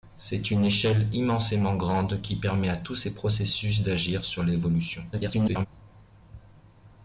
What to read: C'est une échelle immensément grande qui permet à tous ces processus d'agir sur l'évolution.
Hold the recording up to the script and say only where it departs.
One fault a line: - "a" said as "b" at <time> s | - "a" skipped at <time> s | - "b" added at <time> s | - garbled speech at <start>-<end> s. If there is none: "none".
- garbled speech at 5.1-5.7 s